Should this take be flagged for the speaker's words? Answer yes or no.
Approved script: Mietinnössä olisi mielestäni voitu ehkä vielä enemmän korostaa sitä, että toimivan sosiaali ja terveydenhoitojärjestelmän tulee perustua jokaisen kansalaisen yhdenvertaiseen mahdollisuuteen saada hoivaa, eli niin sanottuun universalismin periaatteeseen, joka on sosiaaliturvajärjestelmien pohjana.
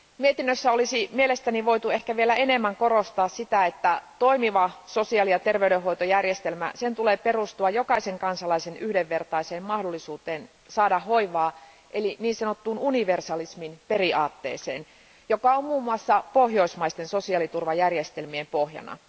yes